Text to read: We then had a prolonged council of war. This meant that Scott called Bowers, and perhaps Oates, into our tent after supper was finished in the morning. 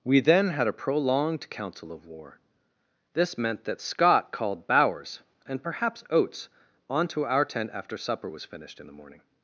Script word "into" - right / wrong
wrong